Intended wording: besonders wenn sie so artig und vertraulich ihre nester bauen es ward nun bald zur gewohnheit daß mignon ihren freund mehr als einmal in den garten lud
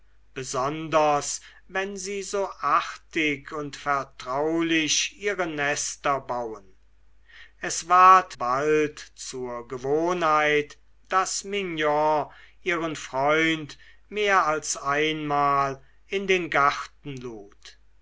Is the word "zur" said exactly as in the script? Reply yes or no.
yes